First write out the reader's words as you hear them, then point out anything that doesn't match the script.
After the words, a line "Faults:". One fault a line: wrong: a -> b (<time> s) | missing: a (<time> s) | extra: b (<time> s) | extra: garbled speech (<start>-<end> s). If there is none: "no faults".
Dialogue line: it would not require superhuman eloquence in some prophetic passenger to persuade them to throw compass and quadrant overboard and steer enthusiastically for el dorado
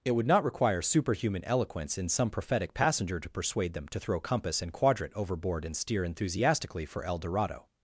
it would not require superhuman eloquence in some prophetic passenger to persuade them to throw compass and quadrant overboard and steer enthusiastically for el dorado
Faults:
no faults